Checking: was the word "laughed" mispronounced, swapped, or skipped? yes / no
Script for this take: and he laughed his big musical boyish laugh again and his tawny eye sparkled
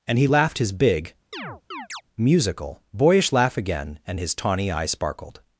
no